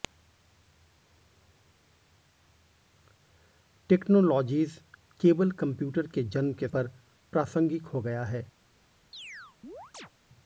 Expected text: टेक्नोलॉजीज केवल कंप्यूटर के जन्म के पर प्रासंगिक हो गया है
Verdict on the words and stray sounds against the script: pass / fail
fail